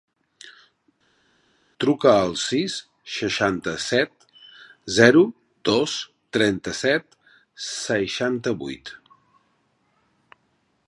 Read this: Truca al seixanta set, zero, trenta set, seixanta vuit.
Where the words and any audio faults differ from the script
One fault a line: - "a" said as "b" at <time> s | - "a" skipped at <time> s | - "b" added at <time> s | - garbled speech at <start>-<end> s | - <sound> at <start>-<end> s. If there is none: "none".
- "sis" added at 2.4 s
- "dos" added at 5.7 s